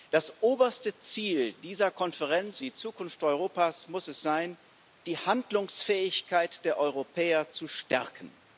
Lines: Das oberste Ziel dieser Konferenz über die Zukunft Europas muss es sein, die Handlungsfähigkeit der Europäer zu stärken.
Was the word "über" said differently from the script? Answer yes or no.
yes